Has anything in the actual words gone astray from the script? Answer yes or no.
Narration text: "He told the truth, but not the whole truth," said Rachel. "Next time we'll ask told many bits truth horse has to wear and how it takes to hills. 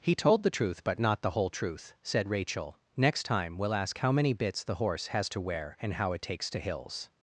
yes